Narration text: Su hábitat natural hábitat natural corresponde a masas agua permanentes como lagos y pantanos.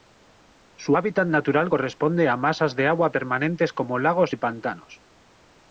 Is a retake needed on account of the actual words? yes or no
yes